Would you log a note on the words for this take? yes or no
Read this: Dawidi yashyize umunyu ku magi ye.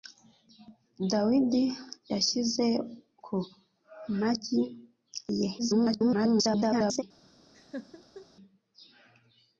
yes